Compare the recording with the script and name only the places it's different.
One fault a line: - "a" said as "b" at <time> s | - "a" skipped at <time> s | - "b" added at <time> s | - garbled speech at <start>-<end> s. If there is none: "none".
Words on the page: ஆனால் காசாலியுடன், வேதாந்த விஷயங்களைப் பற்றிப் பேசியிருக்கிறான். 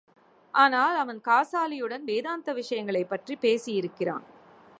- "அவன்" added at 1.0 s